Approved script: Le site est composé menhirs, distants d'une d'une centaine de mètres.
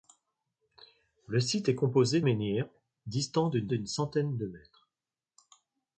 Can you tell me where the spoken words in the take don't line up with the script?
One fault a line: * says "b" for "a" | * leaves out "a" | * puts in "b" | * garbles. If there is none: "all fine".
all fine